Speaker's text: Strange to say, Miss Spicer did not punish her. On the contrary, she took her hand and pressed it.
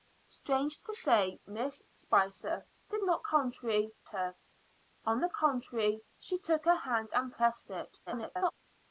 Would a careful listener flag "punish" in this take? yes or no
yes